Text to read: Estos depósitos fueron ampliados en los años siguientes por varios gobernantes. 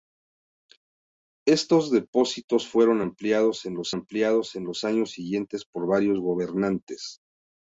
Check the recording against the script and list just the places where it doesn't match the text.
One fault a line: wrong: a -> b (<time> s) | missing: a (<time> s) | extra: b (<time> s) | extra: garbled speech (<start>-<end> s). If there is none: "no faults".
extra: ampliados en los (3.9 s)